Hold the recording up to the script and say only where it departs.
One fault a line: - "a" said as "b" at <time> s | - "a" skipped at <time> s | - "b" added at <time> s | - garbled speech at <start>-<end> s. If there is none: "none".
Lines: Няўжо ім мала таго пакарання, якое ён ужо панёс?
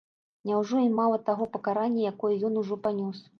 none